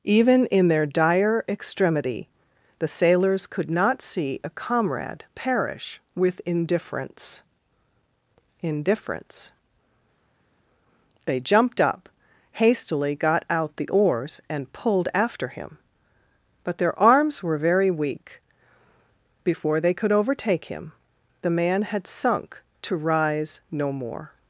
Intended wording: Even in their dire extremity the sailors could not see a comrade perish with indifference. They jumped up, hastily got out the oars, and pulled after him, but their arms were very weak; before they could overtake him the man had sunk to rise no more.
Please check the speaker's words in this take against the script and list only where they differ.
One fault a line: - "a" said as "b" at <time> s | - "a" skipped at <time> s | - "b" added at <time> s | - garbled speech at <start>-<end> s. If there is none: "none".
- "indifference" added at 8.6 s